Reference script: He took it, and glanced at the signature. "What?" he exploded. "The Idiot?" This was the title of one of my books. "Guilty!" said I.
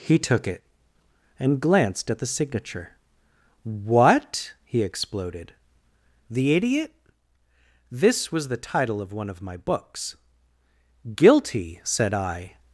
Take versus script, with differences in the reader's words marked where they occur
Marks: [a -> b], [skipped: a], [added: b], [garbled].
He took it, and glanced at the signature. "What?" he exploded. "The Idiot?" This was the title of one of my books. "Guilty!" said I.